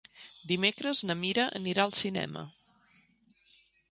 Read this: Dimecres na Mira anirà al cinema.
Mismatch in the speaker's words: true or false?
false